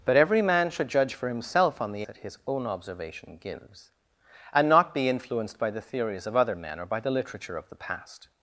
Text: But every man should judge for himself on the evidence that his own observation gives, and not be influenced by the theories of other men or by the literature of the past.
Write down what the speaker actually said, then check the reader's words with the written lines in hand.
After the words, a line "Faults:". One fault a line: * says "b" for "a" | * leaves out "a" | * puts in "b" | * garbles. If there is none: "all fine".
But every man should judge for himself on the that his own observation gives, and not be influenced by the theories of other men or by the literature of the past.
Faults:
* leaves out "evidence"